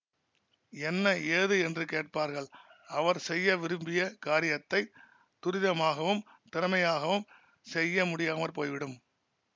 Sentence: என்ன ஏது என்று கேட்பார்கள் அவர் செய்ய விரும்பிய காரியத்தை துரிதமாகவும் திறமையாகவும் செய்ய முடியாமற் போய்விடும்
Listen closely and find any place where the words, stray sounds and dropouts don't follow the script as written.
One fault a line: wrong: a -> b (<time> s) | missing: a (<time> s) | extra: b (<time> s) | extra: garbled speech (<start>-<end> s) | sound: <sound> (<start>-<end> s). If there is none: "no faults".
no faults